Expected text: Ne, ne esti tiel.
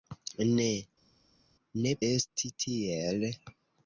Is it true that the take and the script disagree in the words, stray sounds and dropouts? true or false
false